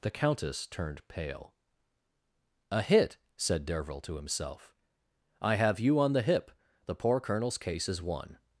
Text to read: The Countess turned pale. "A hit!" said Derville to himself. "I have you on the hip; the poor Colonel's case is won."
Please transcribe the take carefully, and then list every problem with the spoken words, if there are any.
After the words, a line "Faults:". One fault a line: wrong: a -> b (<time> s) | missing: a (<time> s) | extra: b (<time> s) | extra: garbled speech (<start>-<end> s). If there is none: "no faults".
The Countess turned pale. "A hit!" said Derville to himself. "I have you on the hip; the poor Colonel's case is won."
Faults:
no faults